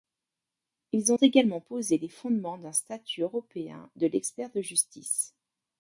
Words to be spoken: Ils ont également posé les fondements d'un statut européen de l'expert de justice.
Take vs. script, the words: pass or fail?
pass